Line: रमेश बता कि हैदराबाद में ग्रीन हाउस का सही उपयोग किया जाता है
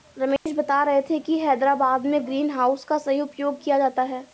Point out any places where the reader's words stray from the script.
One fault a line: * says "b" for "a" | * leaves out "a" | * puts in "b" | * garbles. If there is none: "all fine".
* puts in "रहे थे"